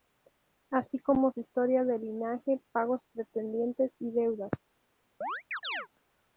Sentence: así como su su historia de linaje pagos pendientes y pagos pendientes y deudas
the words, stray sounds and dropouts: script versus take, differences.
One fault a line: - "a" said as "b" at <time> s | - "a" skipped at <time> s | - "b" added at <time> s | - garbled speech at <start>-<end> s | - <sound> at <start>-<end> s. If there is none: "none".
- "su" skipped at 1.4 s
- "pagos pendientes y" skipped at 4.1 s
- chirp at 5.2-5.9 s